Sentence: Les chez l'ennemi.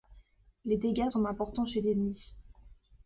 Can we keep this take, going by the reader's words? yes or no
no